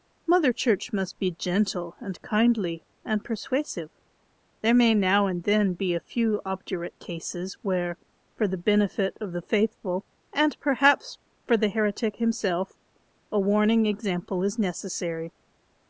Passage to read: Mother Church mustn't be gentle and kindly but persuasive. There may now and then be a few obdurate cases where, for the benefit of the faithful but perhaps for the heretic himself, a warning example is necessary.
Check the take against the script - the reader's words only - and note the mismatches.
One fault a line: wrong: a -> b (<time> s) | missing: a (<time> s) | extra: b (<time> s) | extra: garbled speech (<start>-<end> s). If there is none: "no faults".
wrong: mustn't -> must (0.9 s)
wrong: but -> and (3.0 s)
wrong: but -> and (10.3 s)